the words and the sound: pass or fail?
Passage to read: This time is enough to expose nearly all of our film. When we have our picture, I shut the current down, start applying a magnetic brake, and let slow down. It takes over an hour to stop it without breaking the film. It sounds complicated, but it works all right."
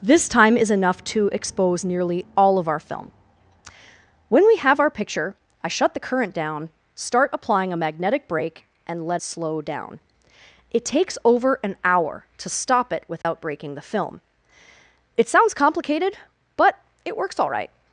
fail